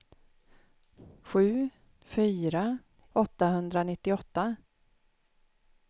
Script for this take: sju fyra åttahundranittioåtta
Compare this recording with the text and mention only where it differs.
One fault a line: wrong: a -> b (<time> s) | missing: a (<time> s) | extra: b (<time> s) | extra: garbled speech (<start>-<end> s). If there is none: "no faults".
no faults